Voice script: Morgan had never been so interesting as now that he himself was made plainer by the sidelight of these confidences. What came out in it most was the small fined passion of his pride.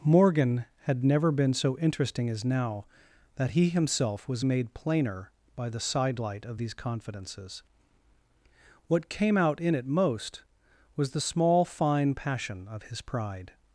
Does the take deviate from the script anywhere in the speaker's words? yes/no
yes